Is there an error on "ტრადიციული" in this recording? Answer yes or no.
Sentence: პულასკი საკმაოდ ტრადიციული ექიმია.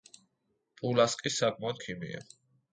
yes